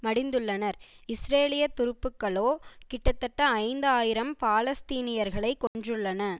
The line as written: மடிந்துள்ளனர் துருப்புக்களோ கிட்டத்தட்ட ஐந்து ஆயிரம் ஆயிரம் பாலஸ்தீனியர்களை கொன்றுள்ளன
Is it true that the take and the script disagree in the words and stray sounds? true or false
true